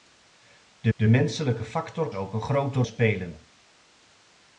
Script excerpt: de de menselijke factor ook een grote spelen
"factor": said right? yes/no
yes